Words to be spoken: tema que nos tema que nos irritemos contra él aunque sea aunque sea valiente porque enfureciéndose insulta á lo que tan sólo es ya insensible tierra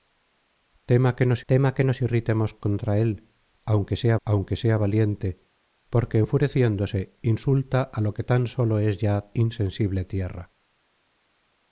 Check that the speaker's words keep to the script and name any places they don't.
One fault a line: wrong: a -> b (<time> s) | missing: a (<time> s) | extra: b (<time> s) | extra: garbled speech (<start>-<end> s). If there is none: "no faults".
no faults